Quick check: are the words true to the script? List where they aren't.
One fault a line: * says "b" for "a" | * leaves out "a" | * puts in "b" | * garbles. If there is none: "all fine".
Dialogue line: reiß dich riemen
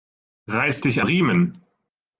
all fine